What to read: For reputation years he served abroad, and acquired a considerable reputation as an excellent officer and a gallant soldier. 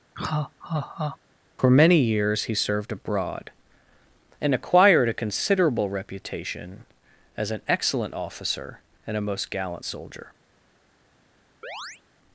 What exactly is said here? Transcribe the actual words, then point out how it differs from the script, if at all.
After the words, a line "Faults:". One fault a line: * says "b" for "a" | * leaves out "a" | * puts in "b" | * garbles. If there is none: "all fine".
For many years he served abroad, and acquired a considerable reputation as an excellent officer and a most gallant soldier.
Faults:
* says "many" for "reputation"
* puts in "most"